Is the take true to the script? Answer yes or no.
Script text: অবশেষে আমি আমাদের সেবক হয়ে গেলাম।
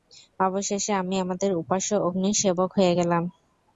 no